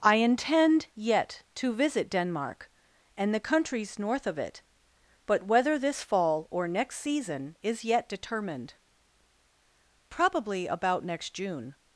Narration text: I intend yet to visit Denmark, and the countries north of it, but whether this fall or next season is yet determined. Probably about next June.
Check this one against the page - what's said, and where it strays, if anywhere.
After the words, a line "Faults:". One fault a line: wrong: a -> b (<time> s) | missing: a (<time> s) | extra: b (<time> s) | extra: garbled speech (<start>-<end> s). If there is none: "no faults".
I intend yet to visit Denmark, and the countries north of it, but whether this fall or next season is yet determined. Probably about next June.
Faults:
no faults